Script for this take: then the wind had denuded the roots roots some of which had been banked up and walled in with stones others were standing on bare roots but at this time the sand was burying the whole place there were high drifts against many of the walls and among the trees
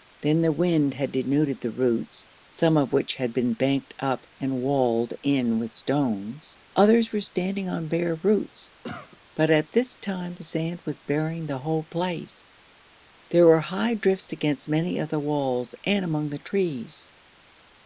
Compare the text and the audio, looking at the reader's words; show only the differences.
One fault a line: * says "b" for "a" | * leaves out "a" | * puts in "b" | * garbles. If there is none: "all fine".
* leaves out "roots"